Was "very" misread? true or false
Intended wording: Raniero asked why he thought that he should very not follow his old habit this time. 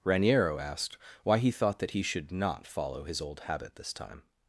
true